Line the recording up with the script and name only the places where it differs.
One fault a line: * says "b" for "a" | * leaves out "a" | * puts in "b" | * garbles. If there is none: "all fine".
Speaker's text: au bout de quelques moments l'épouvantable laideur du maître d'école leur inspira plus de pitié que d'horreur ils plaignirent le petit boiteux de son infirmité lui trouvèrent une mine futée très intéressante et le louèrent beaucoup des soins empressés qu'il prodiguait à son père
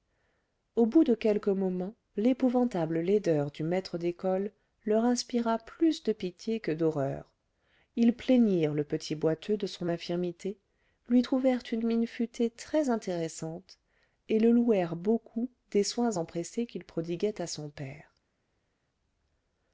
all fine